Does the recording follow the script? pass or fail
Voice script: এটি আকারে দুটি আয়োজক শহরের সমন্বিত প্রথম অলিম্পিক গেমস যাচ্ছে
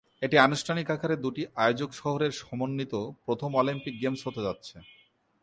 fail